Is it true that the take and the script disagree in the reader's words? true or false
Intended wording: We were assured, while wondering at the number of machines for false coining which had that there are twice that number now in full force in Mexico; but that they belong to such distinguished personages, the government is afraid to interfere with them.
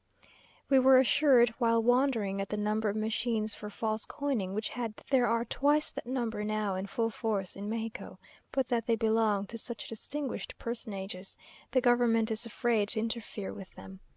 false